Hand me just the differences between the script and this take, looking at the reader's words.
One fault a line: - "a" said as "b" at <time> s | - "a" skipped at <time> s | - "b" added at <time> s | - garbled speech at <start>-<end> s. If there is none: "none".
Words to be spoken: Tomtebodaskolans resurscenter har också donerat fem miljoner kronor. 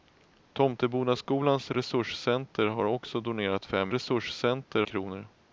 - "miljoner" said as "resurscenter" at 3.9 s